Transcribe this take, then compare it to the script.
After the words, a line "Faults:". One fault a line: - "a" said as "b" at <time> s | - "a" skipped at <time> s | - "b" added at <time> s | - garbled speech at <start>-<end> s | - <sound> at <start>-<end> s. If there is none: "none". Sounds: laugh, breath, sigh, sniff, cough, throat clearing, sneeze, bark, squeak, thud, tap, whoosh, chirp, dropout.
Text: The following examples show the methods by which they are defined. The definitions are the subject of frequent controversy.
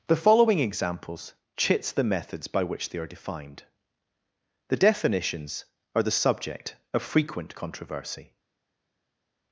The following examples chits the methods by which they are defined. The definitions are the subject of frequent controversy.
Faults:
- "show" said as "chits" at 1.6 s